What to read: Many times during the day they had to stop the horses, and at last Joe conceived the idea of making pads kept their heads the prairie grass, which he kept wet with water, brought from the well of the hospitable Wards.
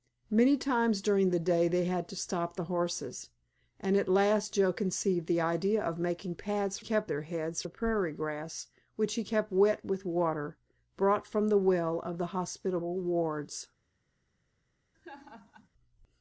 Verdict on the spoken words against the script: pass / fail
pass